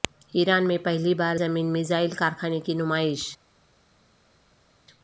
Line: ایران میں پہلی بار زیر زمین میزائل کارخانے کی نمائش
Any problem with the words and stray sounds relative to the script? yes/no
yes